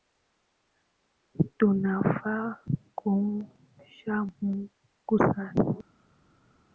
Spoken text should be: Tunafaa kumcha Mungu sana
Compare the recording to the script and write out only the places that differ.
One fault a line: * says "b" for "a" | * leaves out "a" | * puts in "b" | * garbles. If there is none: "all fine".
all fine